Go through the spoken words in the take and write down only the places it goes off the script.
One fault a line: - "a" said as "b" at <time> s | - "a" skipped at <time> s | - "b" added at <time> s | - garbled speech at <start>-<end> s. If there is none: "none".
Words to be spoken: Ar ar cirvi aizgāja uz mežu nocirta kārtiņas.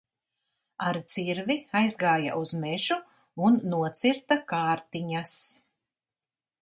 - "ar" skipped at 1.0 s
- "un" added at 3.5 s